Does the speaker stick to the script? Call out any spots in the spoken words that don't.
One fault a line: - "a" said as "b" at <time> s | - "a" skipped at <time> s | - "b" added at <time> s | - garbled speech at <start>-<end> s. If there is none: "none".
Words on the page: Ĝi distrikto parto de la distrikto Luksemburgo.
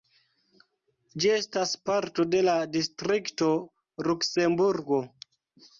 - "distrikto" said as "estas" at 1.3 s